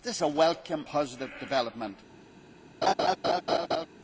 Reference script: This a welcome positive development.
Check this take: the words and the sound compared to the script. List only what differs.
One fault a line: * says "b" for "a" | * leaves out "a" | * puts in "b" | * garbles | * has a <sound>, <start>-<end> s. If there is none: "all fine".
* has a laugh, 2.8-3.9 s